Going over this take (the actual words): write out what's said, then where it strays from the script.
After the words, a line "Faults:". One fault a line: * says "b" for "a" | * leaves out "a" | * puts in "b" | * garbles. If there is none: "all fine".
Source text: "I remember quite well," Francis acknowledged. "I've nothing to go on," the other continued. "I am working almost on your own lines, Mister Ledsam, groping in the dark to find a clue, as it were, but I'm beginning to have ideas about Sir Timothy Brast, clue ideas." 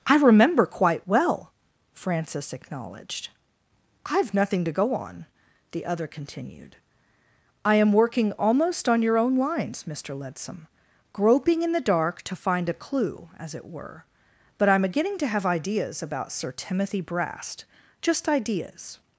"I remember quite well," Francis acknowledged. "I've nothing to go on," the other continued. "I am working almost on your own lines, Mister Ledsam, groping in the dark to find a clue, as it were, but I'm beginning to have ideas about Sir Timothy Brast, just ideas."
Faults:
* says "just" for "clue"